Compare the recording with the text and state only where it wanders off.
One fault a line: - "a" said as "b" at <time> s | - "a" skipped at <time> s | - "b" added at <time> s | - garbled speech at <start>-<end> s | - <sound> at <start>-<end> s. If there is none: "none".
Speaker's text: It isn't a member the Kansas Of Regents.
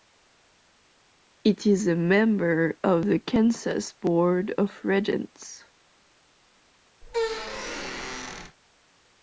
- "isn't" said as "is" at 1.7 s
- "of" added at 2.8 s
- "Board" added at 3.9 s
- squeak at 7.0-8.6 s